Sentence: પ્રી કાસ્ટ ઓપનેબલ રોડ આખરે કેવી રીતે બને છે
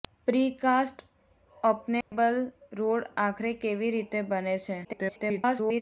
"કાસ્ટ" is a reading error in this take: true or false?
false